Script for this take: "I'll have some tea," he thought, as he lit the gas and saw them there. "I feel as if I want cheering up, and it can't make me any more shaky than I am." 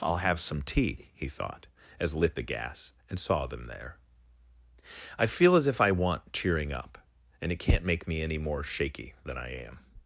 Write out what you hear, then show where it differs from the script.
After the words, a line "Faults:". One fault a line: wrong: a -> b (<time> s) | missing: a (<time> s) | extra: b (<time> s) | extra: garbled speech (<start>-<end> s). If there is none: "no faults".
"I'll have some tea," he thought, as lit the gas and saw them there. "I feel as if I want cheering up, and it can't make me any more shaky than I am."
Faults:
missing: he (2.1 s)